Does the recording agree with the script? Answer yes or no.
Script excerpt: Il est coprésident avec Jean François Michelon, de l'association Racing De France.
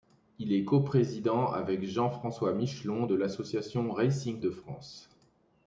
yes